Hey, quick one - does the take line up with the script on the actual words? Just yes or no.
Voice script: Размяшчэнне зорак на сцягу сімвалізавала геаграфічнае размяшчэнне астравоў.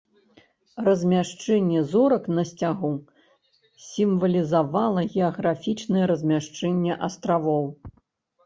yes